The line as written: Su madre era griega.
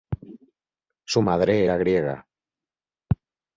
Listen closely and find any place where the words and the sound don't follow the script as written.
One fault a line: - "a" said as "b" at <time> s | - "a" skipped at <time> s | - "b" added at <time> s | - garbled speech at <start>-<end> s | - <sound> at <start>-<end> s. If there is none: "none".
none